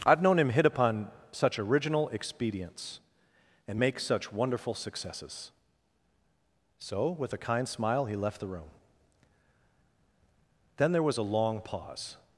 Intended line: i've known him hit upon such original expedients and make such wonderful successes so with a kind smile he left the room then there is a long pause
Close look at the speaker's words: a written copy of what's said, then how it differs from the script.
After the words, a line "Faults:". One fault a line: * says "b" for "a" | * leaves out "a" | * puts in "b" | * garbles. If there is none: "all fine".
i've known him hit upon such original expedients and make such wonderful successes so with a kind smile he left the room then there was a long pause
Faults:
* says "was" for "is"